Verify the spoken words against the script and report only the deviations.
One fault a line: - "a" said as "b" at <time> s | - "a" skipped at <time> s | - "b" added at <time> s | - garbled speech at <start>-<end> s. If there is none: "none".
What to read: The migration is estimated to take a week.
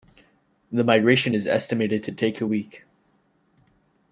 none